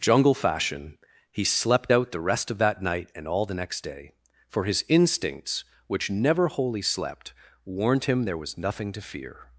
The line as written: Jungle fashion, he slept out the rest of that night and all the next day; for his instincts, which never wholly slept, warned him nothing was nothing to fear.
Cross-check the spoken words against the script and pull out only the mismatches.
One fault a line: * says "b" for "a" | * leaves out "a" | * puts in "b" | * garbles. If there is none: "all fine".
* says "there" for "nothing"